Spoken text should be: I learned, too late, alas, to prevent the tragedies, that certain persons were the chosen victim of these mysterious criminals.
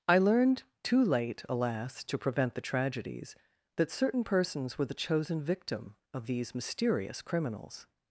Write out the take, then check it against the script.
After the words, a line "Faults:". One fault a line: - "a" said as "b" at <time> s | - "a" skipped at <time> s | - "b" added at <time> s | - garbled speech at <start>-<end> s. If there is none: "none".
I learned, too late, alas, to prevent the tragedies, that certain persons were the chosen victim of these mysterious criminals.
Faults:
none